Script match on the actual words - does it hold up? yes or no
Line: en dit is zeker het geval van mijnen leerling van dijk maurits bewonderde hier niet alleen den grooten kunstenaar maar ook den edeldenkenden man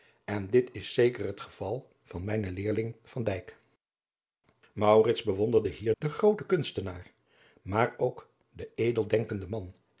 no